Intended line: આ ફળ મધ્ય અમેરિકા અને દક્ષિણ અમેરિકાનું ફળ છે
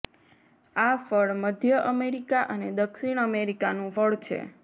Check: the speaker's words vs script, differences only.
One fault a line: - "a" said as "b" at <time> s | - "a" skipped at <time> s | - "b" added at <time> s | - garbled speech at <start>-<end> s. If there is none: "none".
none